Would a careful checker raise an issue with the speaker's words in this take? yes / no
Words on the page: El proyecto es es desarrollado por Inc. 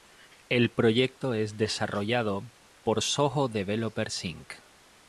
yes